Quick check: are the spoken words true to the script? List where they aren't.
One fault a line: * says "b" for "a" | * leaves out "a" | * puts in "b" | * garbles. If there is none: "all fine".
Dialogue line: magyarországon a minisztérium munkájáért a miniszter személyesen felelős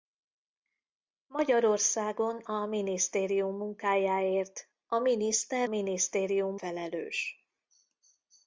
* says "minisztérium" for "személyesen"